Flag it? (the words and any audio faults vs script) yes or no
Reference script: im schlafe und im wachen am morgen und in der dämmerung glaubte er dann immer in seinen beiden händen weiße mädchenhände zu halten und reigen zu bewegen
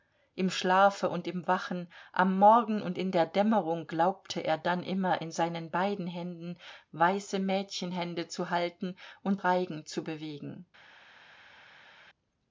no